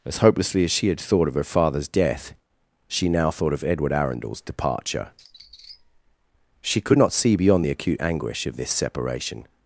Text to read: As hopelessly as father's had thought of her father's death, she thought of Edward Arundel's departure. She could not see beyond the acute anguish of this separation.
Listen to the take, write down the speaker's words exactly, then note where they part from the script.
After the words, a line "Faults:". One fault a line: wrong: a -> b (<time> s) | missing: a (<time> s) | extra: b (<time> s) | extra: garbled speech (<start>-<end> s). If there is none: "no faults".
As hopelessly as she had thought of her father's death, she now thought of Edward Arundel's departure. She could not see beyond the acute anguish of this separation.
Faults:
wrong: father's -> she (0.7 s)
extra: now (3.1 s)